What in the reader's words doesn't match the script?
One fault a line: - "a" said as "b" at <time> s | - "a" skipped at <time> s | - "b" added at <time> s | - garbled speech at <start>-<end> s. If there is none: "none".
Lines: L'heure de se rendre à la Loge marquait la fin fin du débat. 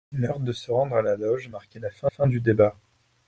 none